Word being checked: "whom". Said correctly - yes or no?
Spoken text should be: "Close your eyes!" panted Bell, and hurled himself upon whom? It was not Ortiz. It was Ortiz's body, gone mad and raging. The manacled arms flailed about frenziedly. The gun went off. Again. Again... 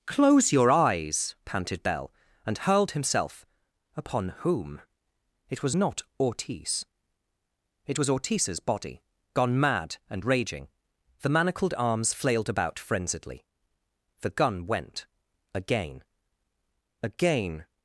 yes